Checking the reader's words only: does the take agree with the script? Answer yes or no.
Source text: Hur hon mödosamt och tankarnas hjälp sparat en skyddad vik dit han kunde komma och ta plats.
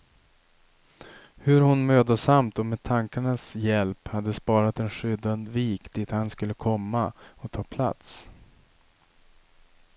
no